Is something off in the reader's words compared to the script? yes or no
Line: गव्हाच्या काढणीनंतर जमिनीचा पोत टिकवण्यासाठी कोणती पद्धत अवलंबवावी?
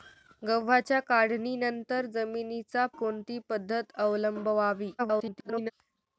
yes